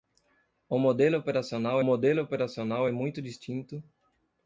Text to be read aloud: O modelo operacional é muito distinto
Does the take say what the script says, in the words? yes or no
no